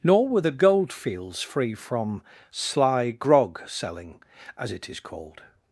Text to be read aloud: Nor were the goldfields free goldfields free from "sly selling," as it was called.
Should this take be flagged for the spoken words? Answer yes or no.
yes